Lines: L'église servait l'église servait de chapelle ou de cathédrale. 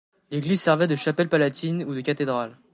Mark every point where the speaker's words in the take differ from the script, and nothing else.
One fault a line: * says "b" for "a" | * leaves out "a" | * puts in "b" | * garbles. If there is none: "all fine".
* leaves out "l'église servait"
* puts in "palatine"